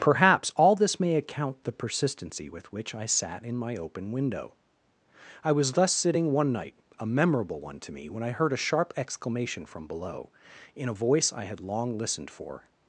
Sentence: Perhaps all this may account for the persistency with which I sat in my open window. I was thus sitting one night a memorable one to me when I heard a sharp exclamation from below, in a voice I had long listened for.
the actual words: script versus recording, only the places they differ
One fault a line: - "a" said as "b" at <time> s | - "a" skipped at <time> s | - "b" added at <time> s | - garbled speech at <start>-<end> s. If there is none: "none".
- "for" skipped at 1.6 s